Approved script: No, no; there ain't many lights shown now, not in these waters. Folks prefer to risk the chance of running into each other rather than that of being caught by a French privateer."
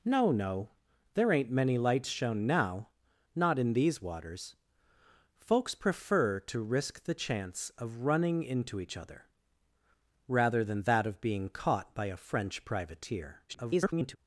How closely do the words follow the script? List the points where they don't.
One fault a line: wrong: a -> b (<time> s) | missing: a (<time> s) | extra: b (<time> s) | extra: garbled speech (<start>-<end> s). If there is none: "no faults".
extra: garbled speech (13.5-14.2 s)